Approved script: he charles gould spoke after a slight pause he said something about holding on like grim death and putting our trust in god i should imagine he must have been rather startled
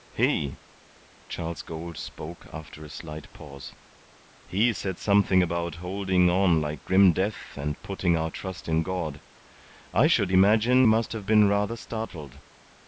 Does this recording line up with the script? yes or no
no